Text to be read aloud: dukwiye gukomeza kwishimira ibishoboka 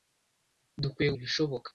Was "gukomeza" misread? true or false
true